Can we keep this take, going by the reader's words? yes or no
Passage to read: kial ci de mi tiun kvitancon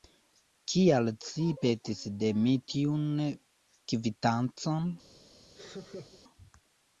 no